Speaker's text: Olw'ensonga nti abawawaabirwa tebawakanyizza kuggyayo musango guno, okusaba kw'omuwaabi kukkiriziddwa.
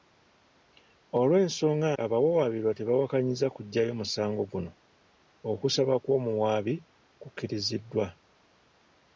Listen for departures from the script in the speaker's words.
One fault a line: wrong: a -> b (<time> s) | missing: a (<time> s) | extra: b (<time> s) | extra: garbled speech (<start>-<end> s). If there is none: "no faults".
missing: nti (1.9 s)